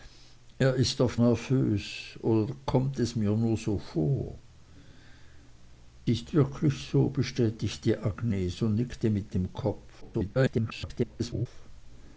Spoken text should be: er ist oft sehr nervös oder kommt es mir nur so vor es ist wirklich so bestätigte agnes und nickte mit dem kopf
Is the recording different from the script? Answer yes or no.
yes